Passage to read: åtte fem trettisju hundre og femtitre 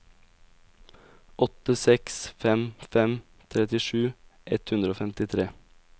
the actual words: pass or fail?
fail